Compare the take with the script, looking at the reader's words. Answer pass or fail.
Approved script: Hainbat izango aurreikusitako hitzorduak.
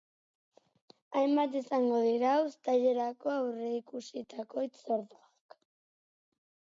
fail